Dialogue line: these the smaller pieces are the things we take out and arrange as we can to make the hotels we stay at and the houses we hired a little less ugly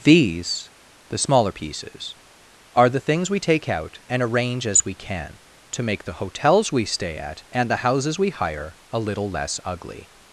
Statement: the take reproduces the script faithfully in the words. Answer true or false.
false